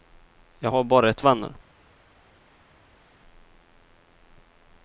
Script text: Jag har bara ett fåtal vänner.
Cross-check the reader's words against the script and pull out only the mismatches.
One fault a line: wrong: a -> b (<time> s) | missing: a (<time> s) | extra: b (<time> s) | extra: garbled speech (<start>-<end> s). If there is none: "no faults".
missing: fåtal (1.2 s)